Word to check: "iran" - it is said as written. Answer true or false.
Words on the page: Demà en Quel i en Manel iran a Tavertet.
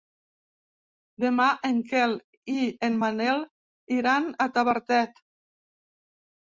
true